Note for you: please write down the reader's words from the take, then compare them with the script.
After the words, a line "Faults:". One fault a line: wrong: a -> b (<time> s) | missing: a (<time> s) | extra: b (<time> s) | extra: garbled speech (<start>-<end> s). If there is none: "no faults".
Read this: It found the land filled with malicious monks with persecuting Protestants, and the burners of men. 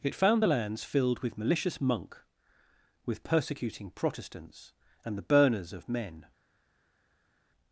It found the lands filled with malicious monk with persecuting Protestants, and the burners of men.
Faults:
wrong: land -> lands (0.5 s)
wrong: monks -> monk (1.8 s)